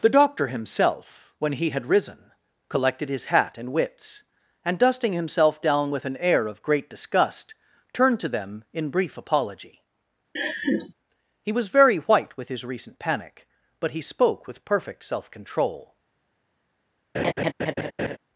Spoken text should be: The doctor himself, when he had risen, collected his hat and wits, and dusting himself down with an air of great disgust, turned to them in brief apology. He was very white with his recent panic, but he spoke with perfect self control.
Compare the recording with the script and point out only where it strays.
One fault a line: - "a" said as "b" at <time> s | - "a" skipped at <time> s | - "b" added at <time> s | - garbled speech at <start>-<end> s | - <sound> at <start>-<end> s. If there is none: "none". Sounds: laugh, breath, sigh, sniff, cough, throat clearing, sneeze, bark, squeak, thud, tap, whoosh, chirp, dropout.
- laugh at 10.4-10.9 s
- laugh at 17.1-18.2 s